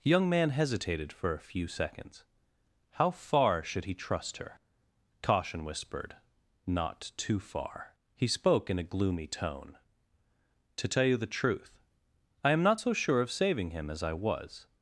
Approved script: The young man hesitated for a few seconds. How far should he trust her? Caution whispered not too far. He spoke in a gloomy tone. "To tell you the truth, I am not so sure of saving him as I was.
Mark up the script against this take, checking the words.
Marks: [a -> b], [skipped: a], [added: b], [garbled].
The young man hesitated for a few seconds. How far should he trust her? Caution whispered not too far. He spoke in a gloomy tone. "To tell you the truth, I am not so sure of saving him as I was.